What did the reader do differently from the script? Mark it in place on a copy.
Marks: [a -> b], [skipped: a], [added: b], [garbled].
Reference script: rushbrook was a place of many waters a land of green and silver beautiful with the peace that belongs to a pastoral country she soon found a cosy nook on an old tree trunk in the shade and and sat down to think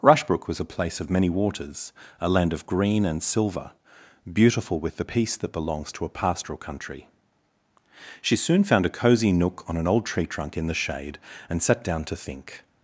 rushbrook was a place of many waters a land of green and silver beautiful with the peace that belongs to a pastoral country she soon found a cosy nook on an old tree trunk in the shade and [skipped: and] sat down to think